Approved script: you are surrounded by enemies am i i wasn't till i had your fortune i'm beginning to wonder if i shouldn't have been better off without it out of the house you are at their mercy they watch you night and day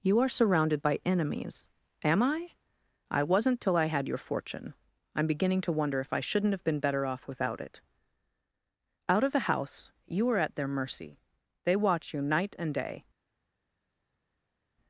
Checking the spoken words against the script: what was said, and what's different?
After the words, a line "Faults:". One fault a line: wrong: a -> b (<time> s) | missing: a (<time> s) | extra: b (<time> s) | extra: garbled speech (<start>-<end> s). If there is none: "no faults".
you are surrounded by enemies am i i wasn't till i had your fortune i'm beginning to wonder if i shouldn't have been better off without it out of the house you are at their mercy they watch you night and day
Faults:
no faults